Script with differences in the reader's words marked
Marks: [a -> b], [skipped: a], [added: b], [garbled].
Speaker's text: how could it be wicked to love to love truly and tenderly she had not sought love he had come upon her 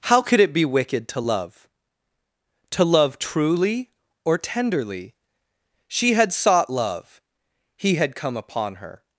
how could it be wicked to love to love truly [and -> or] tenderly she had [skipped: not] sought love he had come upon her